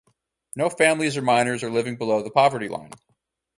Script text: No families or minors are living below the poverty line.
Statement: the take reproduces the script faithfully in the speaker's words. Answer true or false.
true